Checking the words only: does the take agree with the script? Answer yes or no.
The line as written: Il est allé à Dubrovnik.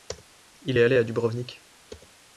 yes